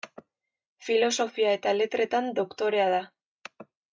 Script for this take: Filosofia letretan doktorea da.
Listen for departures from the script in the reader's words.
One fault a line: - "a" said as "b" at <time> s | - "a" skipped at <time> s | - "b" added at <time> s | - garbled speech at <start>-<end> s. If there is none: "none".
- "eta" added at 1.6 s